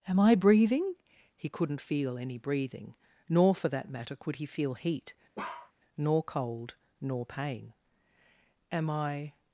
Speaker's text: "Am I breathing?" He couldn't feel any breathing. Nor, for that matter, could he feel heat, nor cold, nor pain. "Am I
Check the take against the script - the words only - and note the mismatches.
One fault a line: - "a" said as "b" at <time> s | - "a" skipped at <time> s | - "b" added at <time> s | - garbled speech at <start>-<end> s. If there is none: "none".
none